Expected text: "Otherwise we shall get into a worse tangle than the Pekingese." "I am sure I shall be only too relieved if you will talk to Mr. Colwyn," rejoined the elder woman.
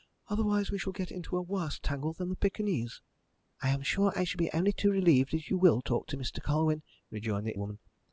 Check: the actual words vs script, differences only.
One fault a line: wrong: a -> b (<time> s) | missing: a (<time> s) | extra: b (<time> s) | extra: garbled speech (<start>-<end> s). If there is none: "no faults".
missing: elder (7.6 s)